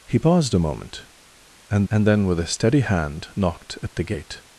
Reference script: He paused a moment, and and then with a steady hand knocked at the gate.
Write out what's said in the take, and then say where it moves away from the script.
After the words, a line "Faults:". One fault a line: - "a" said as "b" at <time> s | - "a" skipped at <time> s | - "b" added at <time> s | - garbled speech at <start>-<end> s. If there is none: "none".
He paused a moment, and and then with a steady hand knocked at the gate.
Faults:
none